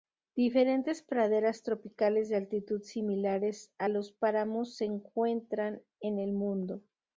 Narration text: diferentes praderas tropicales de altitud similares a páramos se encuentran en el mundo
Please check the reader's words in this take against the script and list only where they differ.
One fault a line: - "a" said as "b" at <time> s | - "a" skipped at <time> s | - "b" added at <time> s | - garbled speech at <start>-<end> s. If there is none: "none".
- "los" added at 3.8 s